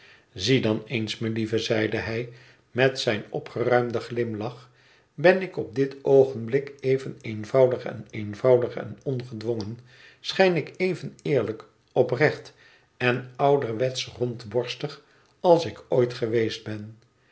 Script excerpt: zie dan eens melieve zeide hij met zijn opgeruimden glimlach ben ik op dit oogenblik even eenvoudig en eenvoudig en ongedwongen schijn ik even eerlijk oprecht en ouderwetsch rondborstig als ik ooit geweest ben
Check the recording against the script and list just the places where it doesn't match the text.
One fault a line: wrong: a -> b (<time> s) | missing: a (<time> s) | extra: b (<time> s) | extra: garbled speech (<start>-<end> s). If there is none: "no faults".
no faults